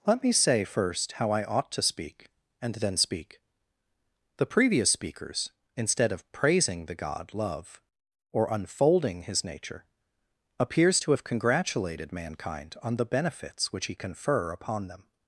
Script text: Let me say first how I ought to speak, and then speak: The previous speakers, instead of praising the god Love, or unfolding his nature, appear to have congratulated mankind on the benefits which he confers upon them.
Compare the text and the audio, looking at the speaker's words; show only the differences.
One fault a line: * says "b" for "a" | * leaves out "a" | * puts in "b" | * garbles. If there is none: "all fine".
* says "appears" for "appear"
* says "confer" for "confers"